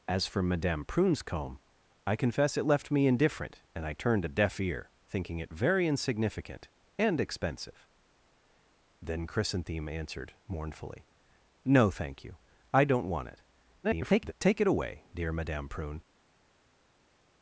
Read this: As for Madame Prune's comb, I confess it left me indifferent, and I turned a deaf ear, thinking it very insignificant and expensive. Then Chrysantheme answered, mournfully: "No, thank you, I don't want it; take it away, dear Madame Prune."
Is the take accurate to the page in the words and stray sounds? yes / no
no